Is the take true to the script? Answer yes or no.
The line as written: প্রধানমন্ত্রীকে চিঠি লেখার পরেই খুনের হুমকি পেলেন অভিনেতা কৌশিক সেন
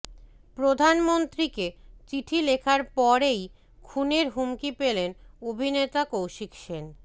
yes